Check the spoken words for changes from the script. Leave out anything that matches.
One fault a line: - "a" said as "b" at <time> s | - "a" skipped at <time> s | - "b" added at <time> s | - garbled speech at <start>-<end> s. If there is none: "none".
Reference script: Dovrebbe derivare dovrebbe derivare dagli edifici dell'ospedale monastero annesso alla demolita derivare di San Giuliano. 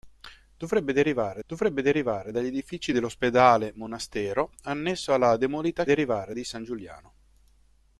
none